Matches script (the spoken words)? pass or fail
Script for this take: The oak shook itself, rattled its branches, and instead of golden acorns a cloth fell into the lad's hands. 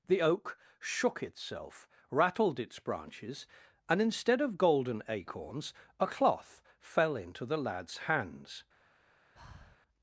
pass